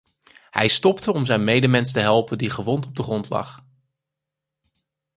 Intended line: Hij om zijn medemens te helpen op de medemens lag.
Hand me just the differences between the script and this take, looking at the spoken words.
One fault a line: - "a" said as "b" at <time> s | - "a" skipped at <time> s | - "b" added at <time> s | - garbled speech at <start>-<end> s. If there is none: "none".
- "stopte" added at 0.7 s
- "die gewond" added at 2.4 s
- "medemens" said as "grond" at 3.0 s